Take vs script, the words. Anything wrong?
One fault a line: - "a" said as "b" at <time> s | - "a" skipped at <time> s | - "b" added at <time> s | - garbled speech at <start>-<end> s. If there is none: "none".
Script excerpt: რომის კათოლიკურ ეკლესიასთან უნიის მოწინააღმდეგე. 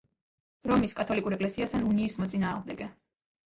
none